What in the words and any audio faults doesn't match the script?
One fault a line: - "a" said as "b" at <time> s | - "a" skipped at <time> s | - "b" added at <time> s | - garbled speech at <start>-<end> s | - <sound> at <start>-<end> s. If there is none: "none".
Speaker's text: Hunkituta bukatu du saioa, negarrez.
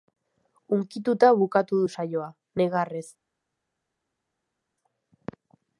none